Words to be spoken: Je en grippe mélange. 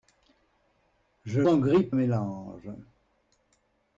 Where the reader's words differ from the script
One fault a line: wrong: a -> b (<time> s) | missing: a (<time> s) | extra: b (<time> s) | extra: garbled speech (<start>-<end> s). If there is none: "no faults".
no faults